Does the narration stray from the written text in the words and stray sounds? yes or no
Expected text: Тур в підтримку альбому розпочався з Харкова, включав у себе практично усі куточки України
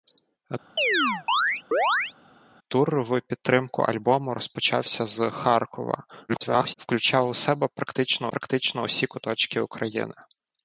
yes